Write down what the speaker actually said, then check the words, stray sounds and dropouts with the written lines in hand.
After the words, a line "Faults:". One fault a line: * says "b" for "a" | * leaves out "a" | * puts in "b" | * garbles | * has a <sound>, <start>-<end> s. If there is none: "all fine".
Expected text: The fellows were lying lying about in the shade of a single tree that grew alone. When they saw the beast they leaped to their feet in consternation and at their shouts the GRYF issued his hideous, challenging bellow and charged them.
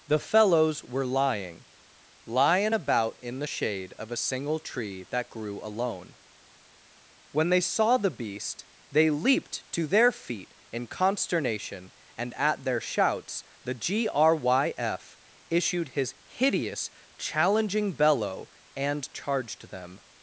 The fellows were lying lying about in the shade of a single tree that grew alone. When they saw the beast they leaped to their feet in consternation and at their shouts the GRYF issued his hideous, challenging bellow and charged them.
Faults:
all fine